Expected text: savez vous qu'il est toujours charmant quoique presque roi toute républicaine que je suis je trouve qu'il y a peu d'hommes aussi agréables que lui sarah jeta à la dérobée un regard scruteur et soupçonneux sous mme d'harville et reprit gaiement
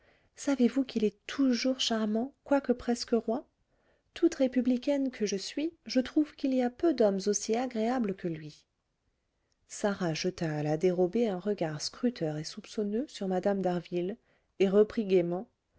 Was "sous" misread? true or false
true